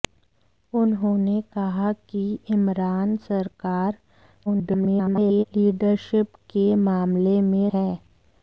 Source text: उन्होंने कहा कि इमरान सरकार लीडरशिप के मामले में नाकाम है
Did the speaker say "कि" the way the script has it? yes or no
yes